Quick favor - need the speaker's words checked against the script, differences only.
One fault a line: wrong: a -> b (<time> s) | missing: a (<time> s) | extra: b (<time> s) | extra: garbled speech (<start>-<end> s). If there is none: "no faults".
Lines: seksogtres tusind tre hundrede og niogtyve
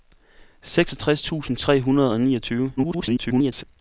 extra: garbled speech (2.8-3.6 s)